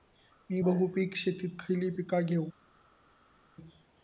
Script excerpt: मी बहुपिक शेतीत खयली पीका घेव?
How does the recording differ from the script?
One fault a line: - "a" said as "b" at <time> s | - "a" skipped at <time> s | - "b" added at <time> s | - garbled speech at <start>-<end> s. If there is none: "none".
none